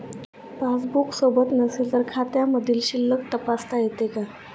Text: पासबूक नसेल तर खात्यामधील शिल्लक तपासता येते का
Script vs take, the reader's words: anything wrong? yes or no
yes